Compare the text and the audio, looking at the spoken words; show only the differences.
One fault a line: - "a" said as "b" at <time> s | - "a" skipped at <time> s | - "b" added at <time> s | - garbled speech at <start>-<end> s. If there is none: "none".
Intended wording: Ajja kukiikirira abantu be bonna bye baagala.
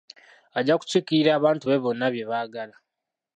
none